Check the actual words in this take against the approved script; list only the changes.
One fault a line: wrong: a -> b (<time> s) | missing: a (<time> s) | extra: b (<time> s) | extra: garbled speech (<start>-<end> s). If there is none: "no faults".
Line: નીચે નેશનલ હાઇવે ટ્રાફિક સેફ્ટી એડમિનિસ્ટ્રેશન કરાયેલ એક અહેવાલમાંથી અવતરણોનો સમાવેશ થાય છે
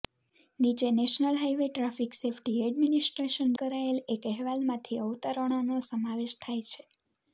no faults